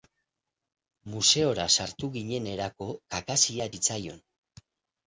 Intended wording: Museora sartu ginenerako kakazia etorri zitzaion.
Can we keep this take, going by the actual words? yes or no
no